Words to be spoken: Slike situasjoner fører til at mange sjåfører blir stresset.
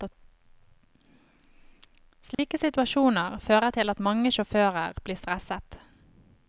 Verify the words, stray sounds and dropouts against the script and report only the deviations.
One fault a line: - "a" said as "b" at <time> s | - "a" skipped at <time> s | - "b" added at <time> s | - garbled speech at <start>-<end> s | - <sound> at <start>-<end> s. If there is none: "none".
- dropout at 2.3-2.4 s